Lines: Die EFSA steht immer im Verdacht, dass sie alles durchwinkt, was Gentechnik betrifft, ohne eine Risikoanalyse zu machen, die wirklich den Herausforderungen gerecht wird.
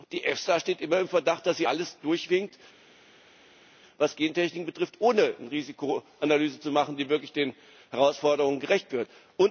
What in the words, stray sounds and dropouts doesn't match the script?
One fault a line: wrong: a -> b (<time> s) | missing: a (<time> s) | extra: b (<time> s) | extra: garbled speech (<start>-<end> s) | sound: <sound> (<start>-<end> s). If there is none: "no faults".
no faults